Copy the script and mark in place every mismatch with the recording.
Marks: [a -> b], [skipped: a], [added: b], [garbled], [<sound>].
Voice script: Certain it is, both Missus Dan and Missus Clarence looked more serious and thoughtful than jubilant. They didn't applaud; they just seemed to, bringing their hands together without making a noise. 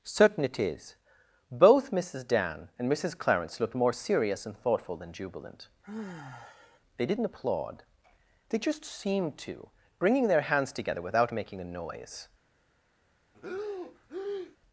Certain it is, both Missus Dan and Missus Clarence looked more serious and thoughtful than jubilant. [sigh] They didn't applaud; they just seemed to, bringing their hands together without making a noise. [breath]